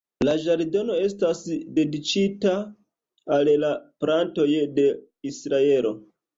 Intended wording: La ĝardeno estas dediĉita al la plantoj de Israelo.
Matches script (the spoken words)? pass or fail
pass